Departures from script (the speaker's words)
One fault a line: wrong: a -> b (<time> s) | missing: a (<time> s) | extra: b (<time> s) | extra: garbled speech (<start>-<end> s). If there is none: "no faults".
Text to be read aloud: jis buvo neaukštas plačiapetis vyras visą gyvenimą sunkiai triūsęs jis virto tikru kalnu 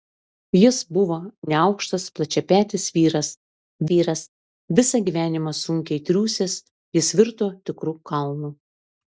extra: vyras (3.9 s)